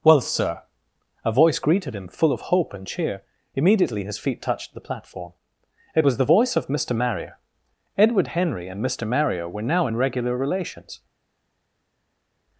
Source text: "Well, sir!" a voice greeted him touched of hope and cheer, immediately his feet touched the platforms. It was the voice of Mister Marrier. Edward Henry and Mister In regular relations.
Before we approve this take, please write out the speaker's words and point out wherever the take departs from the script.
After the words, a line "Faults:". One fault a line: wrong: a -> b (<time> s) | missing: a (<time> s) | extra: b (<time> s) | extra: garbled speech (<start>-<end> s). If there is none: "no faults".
"Well, sir!" a voice greeted him full of hope and cheer, immediately his feet touched the platform. It was the voice of Mister Marrier. Edward Henry and Mister Marrier were now in regular relations.
Faults:
wrong: touched -> full (2.1 s)
wrong: platforms -> platform (4.8 s)
extra: Marrier were now (9.1 s)